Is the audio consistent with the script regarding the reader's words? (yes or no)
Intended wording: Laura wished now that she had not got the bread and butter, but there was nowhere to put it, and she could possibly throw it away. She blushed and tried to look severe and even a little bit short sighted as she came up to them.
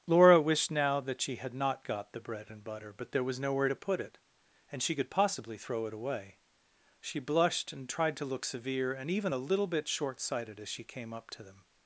yes